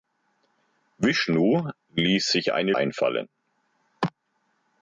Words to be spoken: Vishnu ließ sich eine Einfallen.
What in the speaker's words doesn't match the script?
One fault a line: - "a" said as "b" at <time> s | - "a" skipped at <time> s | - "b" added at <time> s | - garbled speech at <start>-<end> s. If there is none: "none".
none